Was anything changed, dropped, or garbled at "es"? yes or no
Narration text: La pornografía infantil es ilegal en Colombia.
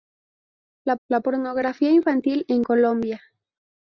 yes